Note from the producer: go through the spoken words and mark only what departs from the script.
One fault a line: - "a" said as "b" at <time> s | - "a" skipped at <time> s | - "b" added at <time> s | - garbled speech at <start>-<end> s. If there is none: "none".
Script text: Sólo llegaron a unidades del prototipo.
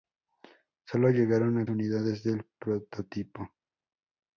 none